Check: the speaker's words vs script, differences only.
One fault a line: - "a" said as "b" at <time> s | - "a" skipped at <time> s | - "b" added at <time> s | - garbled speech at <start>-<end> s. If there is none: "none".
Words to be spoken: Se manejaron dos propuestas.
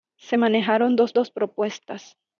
- "dos" added at 1.1 s